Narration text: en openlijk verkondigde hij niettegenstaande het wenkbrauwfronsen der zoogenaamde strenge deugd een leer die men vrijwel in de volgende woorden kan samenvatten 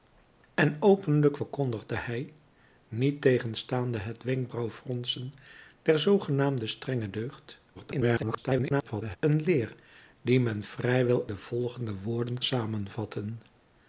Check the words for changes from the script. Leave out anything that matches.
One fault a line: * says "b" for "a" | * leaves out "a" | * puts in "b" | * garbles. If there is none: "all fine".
* garbles
* leaves out "in"
* leaves out "kan"